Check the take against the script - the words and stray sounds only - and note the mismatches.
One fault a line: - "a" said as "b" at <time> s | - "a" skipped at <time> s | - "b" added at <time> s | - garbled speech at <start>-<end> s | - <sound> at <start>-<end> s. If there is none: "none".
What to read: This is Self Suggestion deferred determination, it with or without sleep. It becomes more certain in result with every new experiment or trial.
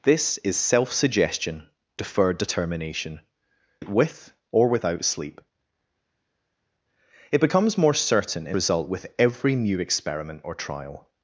none